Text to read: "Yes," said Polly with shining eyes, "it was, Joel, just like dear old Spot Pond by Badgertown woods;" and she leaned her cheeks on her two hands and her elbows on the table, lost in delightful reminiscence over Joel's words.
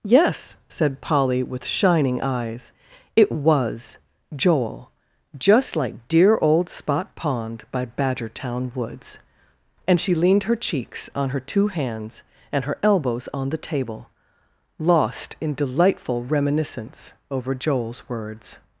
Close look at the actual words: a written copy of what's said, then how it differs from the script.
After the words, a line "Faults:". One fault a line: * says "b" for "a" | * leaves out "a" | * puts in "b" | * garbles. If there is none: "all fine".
"Yes," said Polly with shining eyes, "it was, Joel, just like dear old Spot Pond by Badgertown woods;" and she leaned her cheeks on her two hands and her elbows on the table, lost in delightful reminiscence over Joel's words.
Faults:
all fine